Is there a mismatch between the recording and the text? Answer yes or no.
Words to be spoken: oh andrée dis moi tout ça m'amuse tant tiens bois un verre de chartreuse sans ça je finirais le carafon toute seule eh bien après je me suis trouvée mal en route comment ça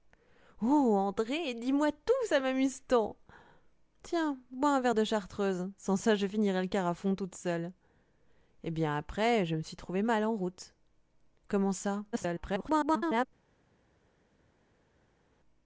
yes